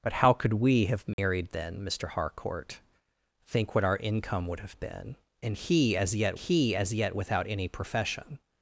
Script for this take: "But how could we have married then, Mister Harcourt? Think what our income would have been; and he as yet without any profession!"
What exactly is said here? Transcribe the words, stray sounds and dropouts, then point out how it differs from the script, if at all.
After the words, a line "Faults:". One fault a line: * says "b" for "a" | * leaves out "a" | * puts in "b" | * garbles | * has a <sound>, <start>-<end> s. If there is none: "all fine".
"But how could we have married then, Mister Harcourt? Think what our income would have been; and he as yet he as yet without any profession!"
Faults:
* has a dropout, 1.1-1.2 s
* puts in "he as yet"